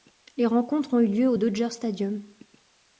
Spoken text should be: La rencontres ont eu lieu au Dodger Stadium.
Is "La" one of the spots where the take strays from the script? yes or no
yes